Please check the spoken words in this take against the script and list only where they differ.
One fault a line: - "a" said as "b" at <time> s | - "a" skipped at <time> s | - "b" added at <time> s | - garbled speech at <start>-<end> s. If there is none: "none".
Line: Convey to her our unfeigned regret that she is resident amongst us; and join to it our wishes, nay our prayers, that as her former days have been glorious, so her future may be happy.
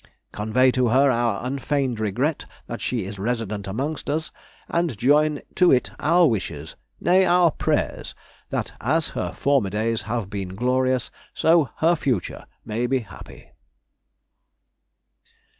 none